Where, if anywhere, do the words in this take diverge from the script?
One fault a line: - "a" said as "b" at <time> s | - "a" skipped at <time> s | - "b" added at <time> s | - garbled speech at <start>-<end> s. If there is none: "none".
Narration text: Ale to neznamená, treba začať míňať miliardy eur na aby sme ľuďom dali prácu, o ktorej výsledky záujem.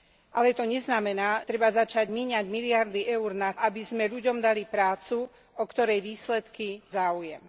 none